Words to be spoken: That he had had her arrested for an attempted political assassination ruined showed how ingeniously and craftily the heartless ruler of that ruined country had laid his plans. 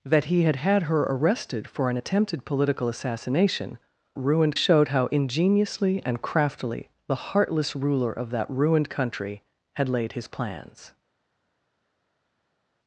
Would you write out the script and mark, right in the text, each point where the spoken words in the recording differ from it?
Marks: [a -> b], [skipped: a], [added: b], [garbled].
That he had had her arrested for an attempted political assassination ruined showed how ingeniously and craftily the heartless ruler of that ruined country had laid his plans.